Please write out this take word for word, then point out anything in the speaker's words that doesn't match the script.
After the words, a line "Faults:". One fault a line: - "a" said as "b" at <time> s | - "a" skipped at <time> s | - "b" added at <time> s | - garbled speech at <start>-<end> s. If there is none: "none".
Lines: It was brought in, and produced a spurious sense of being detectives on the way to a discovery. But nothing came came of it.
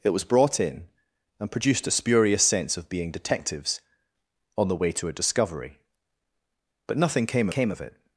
It was brought in, and produced a spurious sense of being detectives on the way to a discovery. But nothing came came of it.
Faults:
none